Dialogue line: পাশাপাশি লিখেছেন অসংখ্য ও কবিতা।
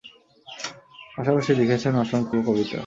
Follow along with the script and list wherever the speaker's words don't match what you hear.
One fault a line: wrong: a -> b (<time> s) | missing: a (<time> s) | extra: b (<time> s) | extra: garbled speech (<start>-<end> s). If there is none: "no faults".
no faults